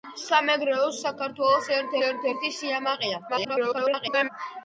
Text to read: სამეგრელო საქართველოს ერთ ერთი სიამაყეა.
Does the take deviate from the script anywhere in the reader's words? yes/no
yes